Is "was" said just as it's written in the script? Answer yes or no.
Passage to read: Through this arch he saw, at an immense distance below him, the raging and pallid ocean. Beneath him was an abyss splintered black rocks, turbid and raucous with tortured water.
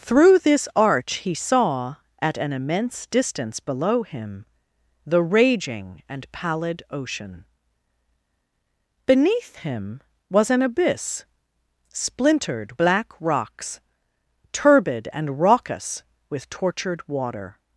yes